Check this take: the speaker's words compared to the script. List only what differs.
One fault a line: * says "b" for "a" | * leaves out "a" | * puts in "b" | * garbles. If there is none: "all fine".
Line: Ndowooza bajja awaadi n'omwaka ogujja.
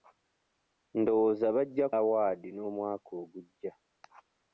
all fine